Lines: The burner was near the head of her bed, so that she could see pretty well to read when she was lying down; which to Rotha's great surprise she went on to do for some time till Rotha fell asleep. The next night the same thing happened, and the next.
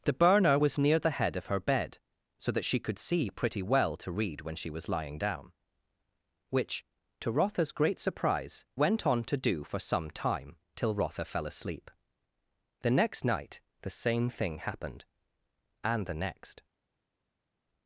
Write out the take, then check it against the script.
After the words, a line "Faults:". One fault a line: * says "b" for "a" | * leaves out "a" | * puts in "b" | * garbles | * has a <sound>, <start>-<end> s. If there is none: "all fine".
The burner was near the head of her bed, so that she could see pretty well to read when she was lying down; which to Rotha's great surprise went on to do for some time till Rotha fell asleep. The next night the same thing happened, and the next.
Faults:
* leaves out "she"